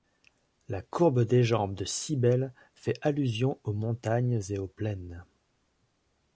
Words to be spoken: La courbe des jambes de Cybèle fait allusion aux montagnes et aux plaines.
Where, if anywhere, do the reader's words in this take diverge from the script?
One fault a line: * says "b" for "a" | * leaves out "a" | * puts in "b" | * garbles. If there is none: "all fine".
all fine